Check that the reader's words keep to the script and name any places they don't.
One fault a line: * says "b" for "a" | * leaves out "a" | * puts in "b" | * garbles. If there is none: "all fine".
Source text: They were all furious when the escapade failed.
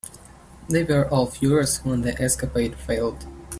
all fine